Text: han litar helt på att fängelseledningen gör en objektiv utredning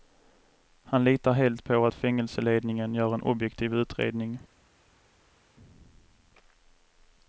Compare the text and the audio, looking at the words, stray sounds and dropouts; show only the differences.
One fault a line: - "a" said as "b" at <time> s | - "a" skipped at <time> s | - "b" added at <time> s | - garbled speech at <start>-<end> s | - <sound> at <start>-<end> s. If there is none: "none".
none